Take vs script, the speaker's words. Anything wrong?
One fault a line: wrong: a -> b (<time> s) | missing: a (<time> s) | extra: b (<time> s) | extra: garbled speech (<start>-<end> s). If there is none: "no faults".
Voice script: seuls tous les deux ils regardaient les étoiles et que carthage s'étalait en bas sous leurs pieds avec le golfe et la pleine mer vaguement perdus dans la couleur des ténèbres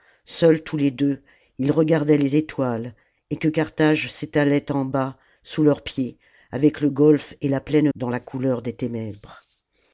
missing: mer vaguement perdus (7.9 s)